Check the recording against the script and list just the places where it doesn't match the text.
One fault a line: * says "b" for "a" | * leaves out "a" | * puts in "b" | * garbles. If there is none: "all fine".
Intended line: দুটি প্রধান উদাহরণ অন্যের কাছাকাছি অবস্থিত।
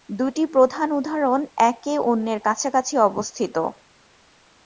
* puts in "একে"